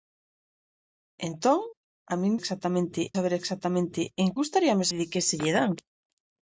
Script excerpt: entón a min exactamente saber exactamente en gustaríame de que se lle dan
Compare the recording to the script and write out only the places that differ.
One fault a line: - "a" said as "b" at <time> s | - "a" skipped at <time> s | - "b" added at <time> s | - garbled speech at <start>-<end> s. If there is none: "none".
none